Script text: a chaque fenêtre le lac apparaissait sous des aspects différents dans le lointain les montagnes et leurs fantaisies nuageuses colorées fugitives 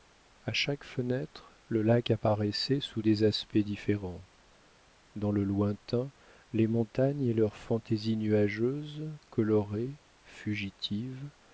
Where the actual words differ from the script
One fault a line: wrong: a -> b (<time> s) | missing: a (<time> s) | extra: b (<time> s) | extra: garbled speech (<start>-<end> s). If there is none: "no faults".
no faults